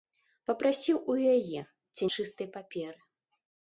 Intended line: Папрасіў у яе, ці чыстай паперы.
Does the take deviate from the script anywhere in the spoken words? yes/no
no